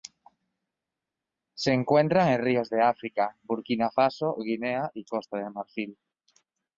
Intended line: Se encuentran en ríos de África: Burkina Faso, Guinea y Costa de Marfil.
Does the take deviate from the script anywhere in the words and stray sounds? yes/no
no